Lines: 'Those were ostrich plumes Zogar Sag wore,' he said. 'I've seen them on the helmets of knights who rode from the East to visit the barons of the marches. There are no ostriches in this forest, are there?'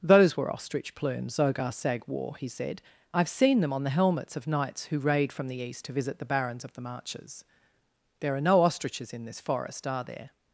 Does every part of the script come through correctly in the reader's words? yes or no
no